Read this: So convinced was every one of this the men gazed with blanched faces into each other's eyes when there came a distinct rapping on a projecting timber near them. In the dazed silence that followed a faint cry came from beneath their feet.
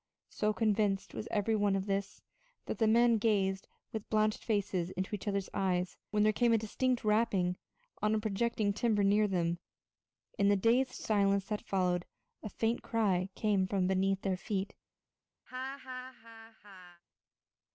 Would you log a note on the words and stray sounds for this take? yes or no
yes